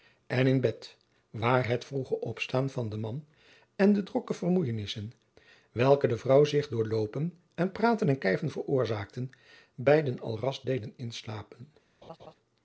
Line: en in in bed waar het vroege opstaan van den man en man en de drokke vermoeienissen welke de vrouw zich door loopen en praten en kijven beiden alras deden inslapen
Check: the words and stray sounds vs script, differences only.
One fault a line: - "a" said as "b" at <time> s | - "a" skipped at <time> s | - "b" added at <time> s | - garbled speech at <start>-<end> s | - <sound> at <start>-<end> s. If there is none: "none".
- "in" skipped at 0.6 s
- "man en" skipped at 3.9 s
- "veroorzaakten" added at 8.5 s
- laugh at 12.0-12.3 s